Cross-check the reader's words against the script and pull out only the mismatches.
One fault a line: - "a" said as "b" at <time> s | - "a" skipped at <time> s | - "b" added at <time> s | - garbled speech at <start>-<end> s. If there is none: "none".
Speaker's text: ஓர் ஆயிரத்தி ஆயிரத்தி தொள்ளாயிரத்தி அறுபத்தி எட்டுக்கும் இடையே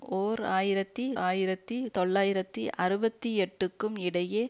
none